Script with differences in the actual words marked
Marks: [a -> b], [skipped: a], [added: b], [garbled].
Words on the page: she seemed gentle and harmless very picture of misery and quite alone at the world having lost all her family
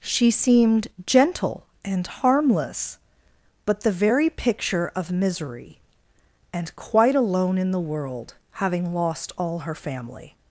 she seemed gentle and harmless [added: but the] very picture of misery and quite alone [at -> in] the world having lost all her family